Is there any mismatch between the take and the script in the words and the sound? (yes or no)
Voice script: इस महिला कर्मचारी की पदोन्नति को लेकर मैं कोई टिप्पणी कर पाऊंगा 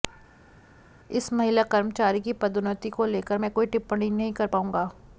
yes